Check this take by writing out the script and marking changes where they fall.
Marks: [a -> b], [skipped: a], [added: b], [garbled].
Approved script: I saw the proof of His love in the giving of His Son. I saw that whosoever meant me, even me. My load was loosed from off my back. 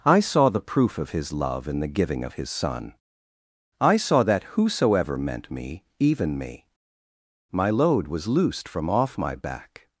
I saw the proof of His love in the giving of His Son. I saw that whosoever meant me, even me. My load was loosed from off my back.